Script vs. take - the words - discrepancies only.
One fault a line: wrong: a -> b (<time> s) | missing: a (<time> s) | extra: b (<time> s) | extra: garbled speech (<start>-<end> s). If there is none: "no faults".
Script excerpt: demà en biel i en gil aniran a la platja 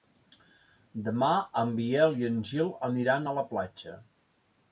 no faults